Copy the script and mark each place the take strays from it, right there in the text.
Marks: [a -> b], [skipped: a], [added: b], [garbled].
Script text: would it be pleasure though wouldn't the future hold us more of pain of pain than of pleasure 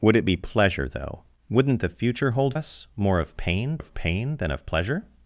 would it be pleasure though wouldn't the future hold us more of pain of pain than of pleasure